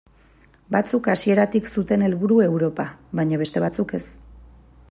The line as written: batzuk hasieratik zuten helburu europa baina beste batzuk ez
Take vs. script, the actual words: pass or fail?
pass